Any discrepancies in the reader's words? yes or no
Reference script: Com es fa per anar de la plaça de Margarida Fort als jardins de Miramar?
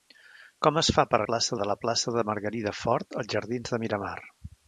yes